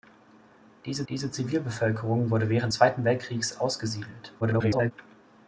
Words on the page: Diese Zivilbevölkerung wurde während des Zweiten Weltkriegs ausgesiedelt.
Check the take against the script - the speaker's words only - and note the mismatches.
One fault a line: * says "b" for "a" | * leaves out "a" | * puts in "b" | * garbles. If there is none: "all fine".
* puts in "diese"
* leaves out "des"
* garbles